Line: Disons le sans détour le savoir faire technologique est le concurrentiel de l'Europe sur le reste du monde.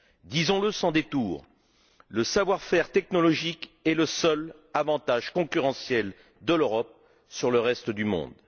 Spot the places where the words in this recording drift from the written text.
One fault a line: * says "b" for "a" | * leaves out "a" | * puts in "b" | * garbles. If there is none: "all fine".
* puts in "seul avantage"